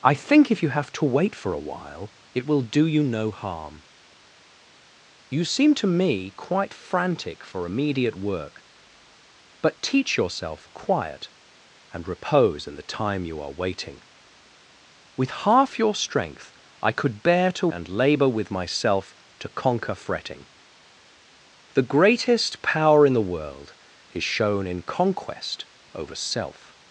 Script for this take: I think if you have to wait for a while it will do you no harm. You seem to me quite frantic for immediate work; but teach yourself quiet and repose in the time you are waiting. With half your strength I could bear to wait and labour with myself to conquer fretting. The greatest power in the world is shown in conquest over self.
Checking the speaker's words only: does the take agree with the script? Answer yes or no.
no